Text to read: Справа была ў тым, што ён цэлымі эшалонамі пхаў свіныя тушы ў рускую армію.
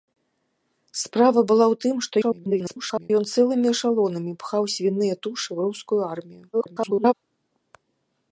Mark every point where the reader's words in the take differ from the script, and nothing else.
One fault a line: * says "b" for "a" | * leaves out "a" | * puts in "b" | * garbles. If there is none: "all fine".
* garbles
* garbles